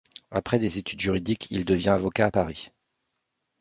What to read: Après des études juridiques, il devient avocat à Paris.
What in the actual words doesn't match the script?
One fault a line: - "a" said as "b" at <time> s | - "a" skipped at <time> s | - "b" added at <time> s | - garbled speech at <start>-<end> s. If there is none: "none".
none